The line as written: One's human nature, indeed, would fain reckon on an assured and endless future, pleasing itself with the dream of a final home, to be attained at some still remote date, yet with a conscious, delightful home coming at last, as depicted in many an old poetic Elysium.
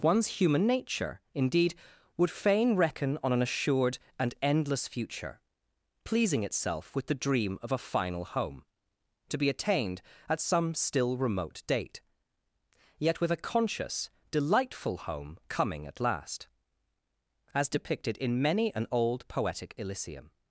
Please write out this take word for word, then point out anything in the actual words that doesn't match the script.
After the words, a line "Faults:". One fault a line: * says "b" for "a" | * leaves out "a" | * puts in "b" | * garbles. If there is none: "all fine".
One's human nature, indeed, would fain reckon on an assured and endless future, pleasing itself with the dream of a final home, to be attained at some still remote date, yet with a conscious, delightful home coming at last, as depicted in many an old poetic Elysium.
Faults:
all fine